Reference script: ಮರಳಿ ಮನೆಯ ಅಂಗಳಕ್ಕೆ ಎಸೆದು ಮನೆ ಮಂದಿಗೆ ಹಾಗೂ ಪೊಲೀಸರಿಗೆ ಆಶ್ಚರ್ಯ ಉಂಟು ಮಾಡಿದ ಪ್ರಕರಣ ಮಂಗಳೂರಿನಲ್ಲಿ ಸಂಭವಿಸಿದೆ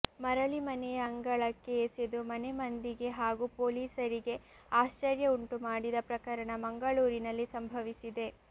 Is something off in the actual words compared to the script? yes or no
no